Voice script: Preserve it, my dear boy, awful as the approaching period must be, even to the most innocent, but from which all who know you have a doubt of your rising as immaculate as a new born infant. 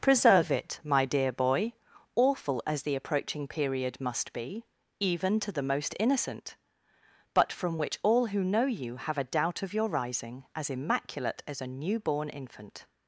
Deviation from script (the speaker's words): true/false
false